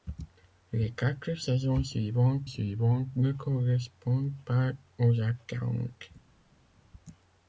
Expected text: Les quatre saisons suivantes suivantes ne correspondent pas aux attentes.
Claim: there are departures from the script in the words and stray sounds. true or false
false